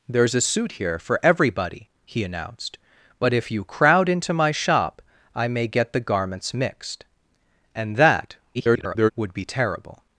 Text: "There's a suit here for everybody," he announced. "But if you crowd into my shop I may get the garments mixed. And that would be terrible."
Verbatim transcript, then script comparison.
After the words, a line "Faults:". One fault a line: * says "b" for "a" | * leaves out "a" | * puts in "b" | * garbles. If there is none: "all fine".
"There's a suit here for everybody," he announced. "But if you crowd into my shop I may get the garments mixed. And that [garbled] would be terrible."
Faults:
* garbles